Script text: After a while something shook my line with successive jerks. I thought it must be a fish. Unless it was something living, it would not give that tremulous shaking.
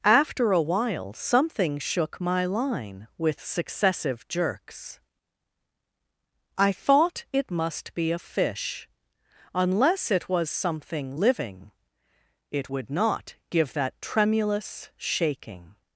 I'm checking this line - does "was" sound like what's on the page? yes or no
yes